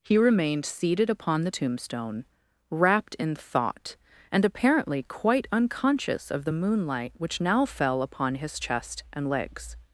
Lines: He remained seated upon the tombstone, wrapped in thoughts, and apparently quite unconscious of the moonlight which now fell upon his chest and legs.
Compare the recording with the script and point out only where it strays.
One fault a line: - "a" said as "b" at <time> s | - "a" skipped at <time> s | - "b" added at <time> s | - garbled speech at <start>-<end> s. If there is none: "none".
- "thoughts" said as "thought" at 3.3 s